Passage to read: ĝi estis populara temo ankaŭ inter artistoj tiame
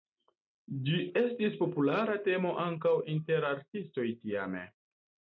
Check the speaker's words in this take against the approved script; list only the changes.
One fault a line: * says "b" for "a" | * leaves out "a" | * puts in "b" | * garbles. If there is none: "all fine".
all fine